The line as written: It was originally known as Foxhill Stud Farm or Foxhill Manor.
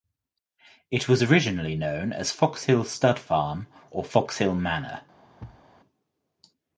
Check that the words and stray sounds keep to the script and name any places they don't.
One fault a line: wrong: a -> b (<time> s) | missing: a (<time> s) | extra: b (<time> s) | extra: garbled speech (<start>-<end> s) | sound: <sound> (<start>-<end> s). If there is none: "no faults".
sound: thud (5.4-5.7 s)